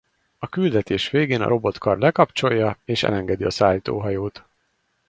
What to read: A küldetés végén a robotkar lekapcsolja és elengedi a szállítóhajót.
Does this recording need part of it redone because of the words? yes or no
no